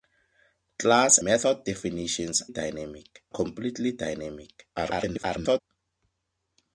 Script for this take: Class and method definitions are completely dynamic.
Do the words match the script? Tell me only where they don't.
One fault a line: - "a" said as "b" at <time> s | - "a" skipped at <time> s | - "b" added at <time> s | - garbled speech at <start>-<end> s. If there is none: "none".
- "and" skipped at 1.2 s
- "are" said as "dynamic" at 2.5 s
- garbled speech at 4.8-5.6 s